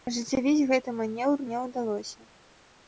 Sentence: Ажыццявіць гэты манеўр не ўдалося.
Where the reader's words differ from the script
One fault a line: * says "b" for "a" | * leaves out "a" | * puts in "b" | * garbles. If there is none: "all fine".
all fine